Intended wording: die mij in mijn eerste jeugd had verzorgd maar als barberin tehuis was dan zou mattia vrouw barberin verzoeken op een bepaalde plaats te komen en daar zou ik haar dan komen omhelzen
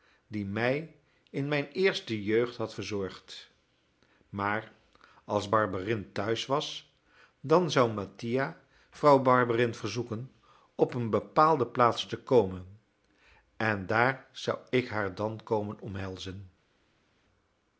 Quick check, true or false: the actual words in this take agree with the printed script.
true